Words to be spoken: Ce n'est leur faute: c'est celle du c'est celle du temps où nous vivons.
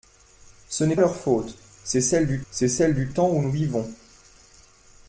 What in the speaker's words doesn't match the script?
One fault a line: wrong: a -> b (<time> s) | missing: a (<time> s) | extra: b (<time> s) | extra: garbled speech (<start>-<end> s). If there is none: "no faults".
no faults